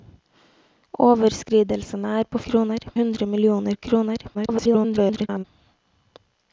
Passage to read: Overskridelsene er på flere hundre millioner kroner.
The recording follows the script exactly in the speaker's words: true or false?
false